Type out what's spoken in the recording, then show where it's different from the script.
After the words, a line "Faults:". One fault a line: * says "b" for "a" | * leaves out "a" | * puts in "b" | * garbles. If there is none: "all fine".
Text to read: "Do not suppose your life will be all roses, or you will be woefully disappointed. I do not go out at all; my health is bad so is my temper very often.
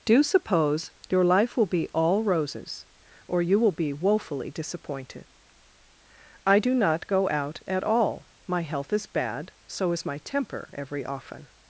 "Do suppose your life will be all roses, or you will be woefully disappointed. I do not go out at all; my health is bad so is my temper every often.
Faults:
* leaves out "not"
* says "every" for "very"